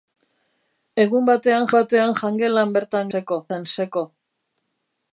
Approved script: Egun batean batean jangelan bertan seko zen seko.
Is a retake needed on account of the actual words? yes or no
no